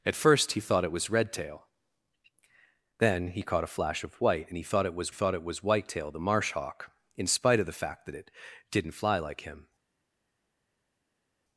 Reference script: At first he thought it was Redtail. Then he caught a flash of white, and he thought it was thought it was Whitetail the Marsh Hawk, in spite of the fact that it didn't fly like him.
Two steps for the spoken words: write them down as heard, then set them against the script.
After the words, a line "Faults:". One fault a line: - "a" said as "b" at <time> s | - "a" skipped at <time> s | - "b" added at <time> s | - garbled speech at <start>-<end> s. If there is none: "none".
At first he thought it was Redtail. Then he caught a flash of white, and he thought it was thought it was Whitetail the Marsh Hawk, in spite of the fact that it didn't fly like him.
Faults:
none